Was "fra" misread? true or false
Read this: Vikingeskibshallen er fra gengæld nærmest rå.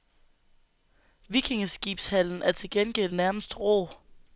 true